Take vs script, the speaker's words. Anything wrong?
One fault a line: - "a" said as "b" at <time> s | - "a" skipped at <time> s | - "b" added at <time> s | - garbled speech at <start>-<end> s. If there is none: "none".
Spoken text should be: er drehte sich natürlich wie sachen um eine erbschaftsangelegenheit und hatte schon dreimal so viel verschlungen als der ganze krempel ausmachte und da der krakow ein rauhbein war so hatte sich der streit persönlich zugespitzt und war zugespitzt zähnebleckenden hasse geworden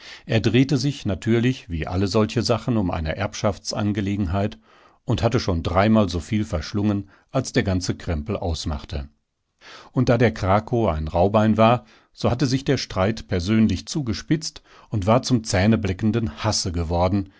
- "alle solche" added at 1.9 s
- "zugespitzt" said as "zum" at 15.2 s